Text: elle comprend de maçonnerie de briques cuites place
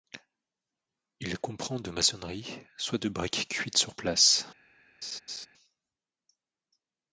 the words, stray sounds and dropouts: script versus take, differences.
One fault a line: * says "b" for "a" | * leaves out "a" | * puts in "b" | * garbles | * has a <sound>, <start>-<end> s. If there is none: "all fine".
* says "il" for "elle"
* puts in "soit"
* puts in "sur"
* has a laugh, 5.0-5.5 s